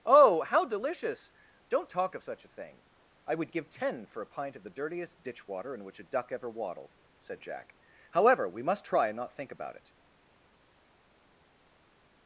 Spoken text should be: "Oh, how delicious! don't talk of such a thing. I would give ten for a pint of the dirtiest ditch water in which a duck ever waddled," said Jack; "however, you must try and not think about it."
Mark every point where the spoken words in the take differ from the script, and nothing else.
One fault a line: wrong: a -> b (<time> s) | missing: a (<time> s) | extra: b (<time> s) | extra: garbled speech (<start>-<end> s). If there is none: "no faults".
wrong: you -> we (8.5 s)